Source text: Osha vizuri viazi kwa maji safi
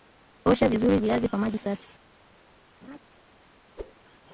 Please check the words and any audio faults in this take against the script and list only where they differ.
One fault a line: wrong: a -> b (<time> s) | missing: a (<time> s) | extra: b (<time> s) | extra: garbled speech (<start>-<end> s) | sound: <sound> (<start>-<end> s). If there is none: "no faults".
sound: laugh (2.8-3.0 s)
sound: whoosh (3.8-3.9 s)